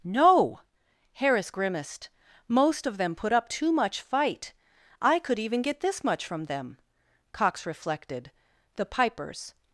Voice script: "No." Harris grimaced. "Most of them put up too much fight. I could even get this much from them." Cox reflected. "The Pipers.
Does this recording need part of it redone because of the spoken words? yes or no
no